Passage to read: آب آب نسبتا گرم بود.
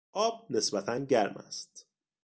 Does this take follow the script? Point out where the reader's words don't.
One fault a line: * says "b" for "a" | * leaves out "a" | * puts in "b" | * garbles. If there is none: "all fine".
* leaves out "آب"
* says "است" for "بود"